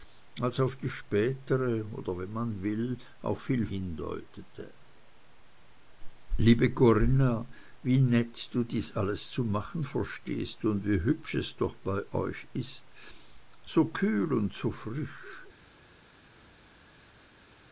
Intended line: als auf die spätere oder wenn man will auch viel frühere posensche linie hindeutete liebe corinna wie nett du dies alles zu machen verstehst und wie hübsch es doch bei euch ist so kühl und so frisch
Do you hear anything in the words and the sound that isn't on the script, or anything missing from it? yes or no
yes